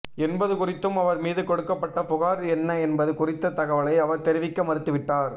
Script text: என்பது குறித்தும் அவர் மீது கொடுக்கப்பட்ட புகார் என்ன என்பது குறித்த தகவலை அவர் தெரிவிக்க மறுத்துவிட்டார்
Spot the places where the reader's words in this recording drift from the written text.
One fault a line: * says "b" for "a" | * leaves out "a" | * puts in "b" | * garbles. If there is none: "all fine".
all fine